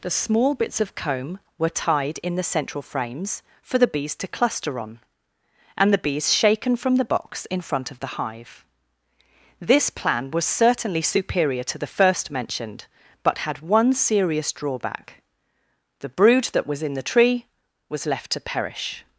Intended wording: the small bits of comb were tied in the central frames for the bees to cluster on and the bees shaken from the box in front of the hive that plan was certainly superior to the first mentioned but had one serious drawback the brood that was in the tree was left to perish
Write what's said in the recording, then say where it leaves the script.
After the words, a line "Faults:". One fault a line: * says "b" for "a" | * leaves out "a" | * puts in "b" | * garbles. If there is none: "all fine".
the small bits of comb were tied in the central frames for the bees to cluster on and the bees shaken from the box in front of the hive this plan was certainly superior to the first mentioned but had one serious drawback the brood that was in the tree was left to perish
Faults:
* says "this" for "that"